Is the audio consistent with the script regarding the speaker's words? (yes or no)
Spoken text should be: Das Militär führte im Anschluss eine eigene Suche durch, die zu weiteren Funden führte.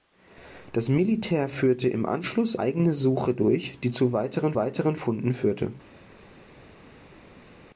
no